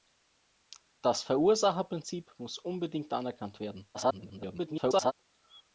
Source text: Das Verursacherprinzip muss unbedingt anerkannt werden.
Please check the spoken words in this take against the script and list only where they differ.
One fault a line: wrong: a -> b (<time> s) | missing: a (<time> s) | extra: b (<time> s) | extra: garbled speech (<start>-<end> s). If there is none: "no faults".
extra: garbled speech (3.9-5.1 s)